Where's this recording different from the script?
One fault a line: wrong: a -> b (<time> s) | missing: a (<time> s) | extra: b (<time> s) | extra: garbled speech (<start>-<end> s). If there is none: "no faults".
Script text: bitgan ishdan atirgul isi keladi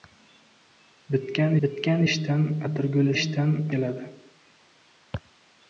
extra: bitgan (1.6 s)
wrong: isi -> ishdan (3.1 s)